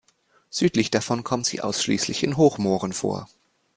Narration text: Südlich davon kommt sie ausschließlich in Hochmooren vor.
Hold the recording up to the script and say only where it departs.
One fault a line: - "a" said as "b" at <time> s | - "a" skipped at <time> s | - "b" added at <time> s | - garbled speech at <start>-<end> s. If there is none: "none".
none